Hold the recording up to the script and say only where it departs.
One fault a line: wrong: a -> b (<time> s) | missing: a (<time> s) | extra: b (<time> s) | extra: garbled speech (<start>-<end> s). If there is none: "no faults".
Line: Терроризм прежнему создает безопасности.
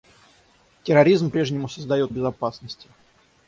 no faults